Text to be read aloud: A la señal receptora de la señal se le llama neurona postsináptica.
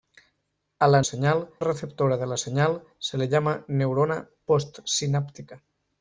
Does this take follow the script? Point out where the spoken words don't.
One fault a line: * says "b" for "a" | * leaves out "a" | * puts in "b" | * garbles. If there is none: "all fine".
all fine